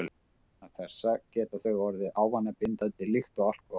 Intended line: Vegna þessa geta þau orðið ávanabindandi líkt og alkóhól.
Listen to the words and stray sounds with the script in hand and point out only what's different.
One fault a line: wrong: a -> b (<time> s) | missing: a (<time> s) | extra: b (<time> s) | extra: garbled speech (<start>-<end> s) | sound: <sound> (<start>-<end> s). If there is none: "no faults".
no faults